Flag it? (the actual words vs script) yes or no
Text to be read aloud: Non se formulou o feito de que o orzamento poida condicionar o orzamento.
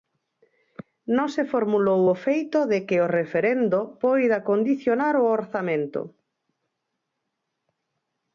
yes